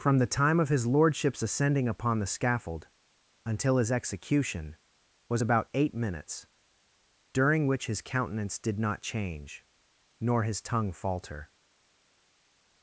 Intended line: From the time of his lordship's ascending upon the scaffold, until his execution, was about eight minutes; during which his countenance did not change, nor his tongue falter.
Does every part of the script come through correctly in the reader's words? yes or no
yes